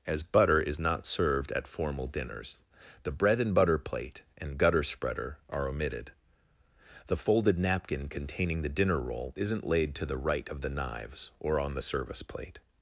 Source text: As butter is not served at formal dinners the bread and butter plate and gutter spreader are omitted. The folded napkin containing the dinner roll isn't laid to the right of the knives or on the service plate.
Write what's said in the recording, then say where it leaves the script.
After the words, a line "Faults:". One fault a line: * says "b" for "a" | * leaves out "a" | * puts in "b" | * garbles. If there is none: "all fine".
As butter is not served at formal dinners the bread and butter plate and gutter spreader are omitted. The folded napkin containing the dinner roll isn't laid to the right of the knives or on the service plate.
Faults:
all fine